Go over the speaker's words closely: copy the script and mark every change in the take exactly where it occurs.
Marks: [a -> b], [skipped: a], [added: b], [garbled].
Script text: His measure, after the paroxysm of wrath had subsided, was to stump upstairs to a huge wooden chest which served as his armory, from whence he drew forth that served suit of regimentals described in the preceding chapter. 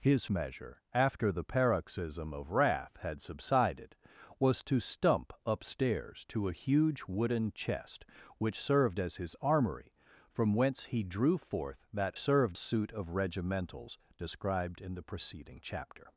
His measure, after the paroxysm of wrath had subsided, was to stump upstairs to a huge wooden chest which served as his armory, from whence he drew forth that served suit of regimentals described in the preceding chapter.